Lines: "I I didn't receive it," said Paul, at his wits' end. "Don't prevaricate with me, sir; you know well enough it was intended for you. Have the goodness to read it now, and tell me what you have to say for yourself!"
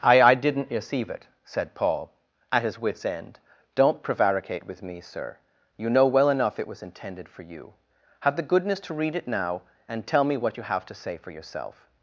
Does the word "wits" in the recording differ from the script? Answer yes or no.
no